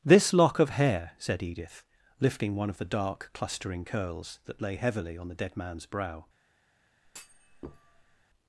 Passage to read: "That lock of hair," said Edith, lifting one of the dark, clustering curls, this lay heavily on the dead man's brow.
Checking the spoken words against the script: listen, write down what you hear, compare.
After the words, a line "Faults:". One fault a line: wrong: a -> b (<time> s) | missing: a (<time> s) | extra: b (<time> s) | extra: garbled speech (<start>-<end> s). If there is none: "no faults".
"This lock of hair," said Edith, lifting one of the dark, clustering curls, that lay heavily on the dead man's brow.
Faults:
wrong: That -> This (0.0 s)
wrong: this -> that (4.5 s)